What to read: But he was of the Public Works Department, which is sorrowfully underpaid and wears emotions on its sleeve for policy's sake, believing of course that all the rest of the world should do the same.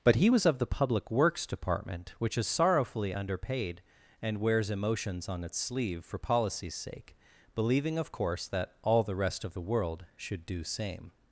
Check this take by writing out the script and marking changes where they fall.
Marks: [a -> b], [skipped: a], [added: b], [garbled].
But he was of the Public Works Department, which is sorrowfully underpaid and wears emotions on its sleeve for policy's sake, believing of course that all the rest of the world should do [skipped: the] same.